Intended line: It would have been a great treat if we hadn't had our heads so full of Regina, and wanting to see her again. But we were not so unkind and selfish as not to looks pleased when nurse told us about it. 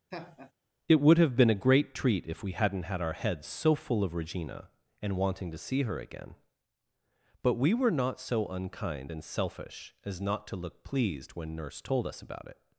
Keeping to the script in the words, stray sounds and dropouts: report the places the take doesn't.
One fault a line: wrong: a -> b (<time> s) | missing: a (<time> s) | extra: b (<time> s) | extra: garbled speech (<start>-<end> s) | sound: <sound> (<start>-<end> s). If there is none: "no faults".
sound: laugh (0.1-0.5 s)
wrong: looks -> look (10.6 s)